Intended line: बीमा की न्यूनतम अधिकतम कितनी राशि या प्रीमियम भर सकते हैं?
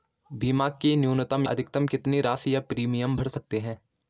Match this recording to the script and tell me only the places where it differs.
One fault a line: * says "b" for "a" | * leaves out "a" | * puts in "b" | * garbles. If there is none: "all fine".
all fine